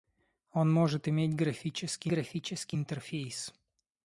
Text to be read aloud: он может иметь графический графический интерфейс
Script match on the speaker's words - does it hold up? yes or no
yes